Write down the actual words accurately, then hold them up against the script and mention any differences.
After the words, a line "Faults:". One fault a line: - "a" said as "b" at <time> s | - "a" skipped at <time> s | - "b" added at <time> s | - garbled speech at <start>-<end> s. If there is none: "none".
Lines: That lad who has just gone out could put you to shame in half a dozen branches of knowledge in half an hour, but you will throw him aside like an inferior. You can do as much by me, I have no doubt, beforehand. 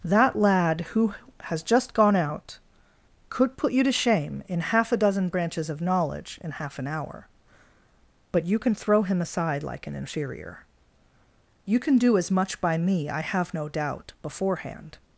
That lad who has just gone out could put you to shame in half a dozen branches of knowledge in half an hour, but you can throw him aside like an inferior. You can do as much by me, I have no doubt, beforehand.
Faults:
- "will" said as "can" at 8.6 s